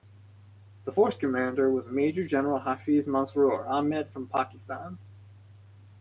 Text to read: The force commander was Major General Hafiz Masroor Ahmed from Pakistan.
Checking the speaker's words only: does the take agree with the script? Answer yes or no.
yes